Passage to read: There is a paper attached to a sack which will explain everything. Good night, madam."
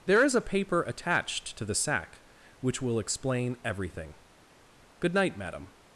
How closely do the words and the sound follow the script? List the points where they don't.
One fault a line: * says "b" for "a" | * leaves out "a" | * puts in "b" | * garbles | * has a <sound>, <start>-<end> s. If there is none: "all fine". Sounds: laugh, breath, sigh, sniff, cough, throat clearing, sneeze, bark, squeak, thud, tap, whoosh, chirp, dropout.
* says "the" for "a"